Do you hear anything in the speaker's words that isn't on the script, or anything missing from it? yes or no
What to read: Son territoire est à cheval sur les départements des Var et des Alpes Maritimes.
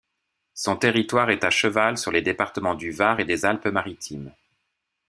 yes